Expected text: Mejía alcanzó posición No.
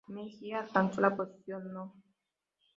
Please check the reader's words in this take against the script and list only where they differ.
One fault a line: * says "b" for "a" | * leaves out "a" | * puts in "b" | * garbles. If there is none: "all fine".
* puts in "la"